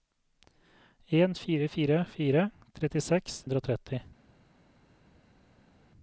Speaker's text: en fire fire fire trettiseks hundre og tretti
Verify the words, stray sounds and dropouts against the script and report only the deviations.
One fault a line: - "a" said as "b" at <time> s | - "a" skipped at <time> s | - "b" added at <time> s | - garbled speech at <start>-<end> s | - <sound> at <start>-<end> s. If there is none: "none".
none